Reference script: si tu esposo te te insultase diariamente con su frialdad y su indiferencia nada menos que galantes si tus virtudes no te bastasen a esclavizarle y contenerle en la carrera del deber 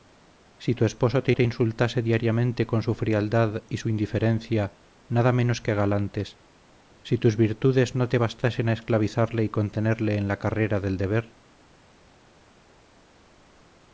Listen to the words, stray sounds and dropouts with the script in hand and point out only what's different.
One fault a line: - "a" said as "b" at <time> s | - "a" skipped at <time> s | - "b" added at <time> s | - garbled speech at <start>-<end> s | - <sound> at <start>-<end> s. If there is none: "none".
none